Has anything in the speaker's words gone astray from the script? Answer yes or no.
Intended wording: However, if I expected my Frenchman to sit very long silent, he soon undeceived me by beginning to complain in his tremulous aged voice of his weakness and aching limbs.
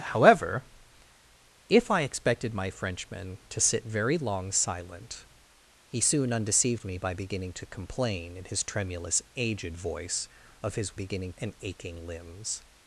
yes